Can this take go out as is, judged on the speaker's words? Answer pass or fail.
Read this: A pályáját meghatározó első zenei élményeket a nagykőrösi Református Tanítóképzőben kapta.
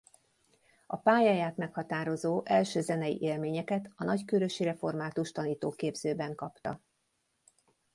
pass